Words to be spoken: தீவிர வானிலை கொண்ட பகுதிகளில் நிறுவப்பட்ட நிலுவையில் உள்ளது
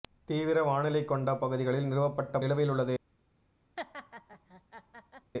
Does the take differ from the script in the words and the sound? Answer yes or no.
yes